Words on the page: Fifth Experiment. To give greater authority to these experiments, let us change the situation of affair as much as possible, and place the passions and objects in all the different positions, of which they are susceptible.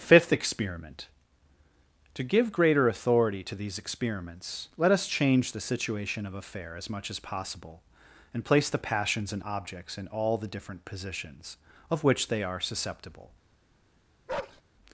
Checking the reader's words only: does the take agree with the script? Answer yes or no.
yes